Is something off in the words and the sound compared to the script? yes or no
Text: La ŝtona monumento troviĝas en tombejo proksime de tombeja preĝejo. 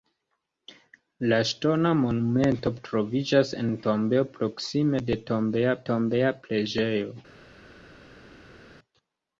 yes